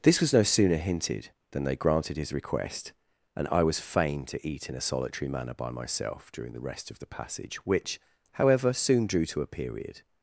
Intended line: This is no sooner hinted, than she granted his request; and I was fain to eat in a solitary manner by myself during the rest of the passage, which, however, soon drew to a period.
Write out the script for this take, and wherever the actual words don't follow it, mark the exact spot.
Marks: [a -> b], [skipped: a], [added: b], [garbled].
This [is -> was] no sooner hinted, than [she -> they] granted his request; and I was fain to eat in a solitary manner by myself during the rest of the passage, which, however, soon drew to a period.